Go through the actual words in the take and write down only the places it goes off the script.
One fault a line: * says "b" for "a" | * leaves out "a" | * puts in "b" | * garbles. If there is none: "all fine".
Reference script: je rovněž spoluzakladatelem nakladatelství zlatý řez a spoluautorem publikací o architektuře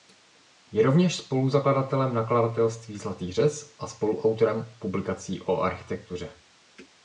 all fine